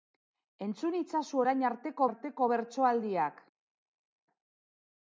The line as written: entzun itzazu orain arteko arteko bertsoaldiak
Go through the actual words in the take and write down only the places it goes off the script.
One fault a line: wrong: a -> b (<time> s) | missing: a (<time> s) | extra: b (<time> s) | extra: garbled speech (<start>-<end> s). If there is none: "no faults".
no faults